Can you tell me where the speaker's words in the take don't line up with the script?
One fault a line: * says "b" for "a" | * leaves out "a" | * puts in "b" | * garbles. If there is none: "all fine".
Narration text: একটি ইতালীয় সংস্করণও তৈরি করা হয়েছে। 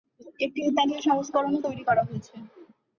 all fine